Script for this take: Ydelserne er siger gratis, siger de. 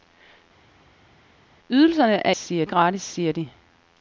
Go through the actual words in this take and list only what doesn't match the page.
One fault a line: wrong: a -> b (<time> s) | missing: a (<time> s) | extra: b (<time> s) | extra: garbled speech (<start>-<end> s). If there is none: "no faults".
no faults